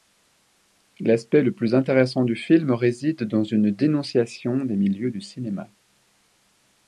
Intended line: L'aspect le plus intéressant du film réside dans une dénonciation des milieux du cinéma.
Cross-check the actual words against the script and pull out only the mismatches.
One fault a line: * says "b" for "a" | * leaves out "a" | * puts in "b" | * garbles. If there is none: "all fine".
all fine